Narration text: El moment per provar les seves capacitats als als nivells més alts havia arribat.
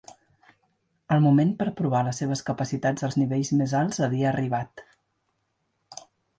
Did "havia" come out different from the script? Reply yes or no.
no